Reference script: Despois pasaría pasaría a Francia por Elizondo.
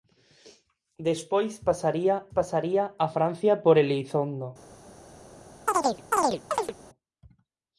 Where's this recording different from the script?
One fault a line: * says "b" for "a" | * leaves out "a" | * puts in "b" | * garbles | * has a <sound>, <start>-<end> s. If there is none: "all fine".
* has a chirp, 5.7-6.7 s